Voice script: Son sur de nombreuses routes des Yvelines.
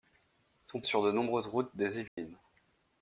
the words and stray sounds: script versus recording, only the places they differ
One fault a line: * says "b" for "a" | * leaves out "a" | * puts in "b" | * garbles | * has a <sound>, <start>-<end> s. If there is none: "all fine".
* has a dropout, 2.1-2.2 s